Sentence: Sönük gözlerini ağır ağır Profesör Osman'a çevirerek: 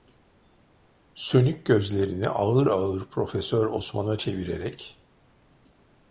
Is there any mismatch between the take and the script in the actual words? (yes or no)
no